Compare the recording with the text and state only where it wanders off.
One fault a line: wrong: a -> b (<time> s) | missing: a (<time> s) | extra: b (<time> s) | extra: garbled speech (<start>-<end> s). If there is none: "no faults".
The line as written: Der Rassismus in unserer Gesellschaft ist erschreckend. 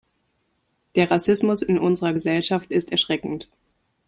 no faults